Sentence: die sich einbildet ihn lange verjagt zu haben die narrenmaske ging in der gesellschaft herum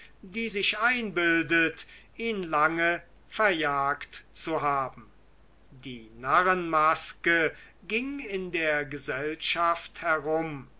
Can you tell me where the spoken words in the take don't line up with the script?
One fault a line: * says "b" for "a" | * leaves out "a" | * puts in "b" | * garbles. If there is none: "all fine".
all fine